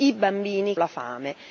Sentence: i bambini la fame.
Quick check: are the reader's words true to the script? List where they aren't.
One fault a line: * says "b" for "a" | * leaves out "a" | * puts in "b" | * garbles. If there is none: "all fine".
all fine